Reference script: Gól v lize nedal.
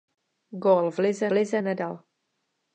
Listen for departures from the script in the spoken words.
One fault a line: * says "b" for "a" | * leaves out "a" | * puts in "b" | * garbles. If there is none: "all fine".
* puts in "lize"